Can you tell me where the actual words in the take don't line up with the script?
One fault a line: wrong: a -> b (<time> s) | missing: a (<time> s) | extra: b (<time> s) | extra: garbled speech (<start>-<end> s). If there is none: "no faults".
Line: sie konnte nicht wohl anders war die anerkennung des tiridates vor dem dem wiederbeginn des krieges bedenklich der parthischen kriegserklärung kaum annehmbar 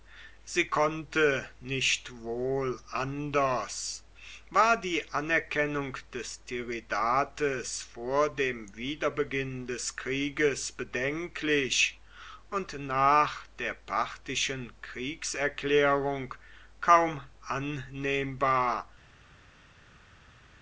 missing: dem (8.8 s)
extra: und nach (12.5 s)